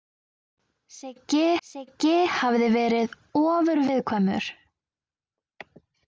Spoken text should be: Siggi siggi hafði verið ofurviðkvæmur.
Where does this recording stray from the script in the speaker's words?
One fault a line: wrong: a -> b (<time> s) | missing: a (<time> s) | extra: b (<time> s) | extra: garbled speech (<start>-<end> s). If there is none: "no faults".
no faults